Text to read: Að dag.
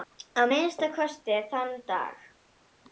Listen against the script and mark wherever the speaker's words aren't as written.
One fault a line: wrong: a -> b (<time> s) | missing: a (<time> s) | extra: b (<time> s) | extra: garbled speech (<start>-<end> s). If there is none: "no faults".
extra: minnsta kosti þann (0.5 s)